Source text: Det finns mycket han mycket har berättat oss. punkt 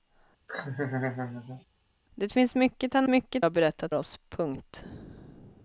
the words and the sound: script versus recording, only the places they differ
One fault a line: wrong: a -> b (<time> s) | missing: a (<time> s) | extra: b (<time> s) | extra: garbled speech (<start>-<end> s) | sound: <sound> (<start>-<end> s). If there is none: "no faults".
sound: laugh (0.5-1.7 s)